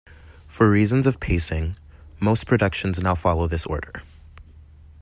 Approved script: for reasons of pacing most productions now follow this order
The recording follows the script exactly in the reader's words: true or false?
true